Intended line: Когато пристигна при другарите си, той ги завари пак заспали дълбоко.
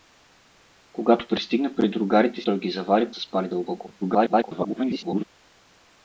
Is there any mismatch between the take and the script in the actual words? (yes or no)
yes